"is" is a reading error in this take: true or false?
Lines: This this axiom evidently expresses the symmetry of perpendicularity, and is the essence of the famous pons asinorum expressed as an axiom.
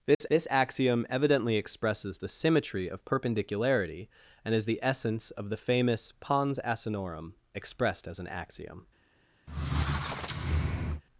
false